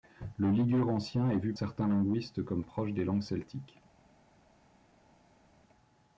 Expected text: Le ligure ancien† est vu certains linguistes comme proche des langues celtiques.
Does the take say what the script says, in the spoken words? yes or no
yes